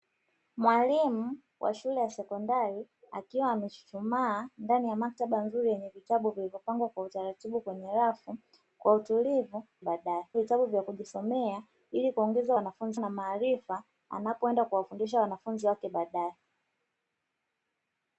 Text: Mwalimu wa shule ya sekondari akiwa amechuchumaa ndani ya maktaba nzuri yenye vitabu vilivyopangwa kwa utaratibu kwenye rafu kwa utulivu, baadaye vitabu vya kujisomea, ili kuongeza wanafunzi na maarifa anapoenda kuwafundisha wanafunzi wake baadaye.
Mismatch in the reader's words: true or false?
false